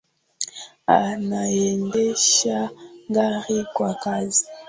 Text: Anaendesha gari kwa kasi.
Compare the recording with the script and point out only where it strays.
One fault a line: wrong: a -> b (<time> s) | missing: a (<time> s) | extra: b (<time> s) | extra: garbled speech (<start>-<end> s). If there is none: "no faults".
no faults